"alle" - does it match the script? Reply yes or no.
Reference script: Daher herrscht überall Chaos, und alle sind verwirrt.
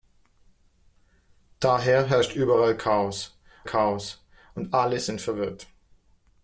yes